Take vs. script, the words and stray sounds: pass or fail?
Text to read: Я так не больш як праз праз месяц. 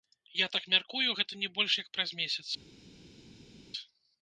fail